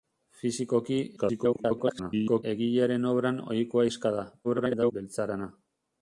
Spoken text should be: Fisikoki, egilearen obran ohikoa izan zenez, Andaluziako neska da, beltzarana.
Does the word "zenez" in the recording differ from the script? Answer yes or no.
yes